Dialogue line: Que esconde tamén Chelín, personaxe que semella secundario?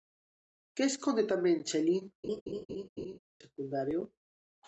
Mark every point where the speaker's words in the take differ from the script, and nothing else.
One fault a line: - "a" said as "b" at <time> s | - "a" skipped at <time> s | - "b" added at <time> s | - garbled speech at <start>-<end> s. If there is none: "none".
- "personaxe que semella" skipped at 2.0 s